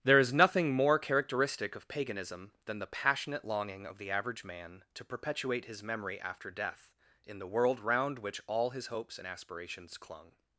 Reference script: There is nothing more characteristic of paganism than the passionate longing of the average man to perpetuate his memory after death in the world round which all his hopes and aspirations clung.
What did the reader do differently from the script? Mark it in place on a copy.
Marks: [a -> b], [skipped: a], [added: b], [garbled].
There is nothing more characteristic of paganism than the passionate longing of the average man to perpetuate his memory after death in the world round which all his hopes and aspirations clung.